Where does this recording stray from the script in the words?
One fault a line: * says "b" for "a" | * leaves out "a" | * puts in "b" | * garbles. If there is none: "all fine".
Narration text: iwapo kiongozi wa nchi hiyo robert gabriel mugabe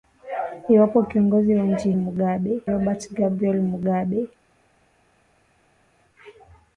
* says "mugabe" for "hiyo"